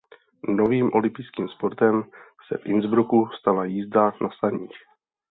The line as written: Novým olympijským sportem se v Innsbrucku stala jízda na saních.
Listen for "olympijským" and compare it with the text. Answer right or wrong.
right